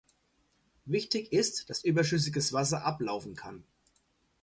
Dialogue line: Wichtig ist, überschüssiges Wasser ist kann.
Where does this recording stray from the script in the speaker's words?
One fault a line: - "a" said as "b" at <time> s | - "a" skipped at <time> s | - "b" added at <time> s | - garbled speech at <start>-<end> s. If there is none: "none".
- "dass" added at 1.7 s
- "ist" said as "ablaufen" at 2.8 s